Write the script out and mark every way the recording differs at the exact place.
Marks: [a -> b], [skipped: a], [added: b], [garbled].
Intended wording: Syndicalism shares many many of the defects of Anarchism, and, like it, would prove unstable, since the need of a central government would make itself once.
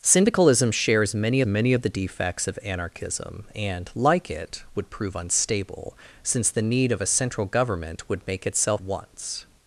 Syndicalism shares many many of the defects of Anarchism, and, like it, would prove unstable, since the need of a central government would make itself once.